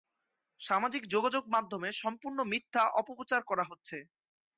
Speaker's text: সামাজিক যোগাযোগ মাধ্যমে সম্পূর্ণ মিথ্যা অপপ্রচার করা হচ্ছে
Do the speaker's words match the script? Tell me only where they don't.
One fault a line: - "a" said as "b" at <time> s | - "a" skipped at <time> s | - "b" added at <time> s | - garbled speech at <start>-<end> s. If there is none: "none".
none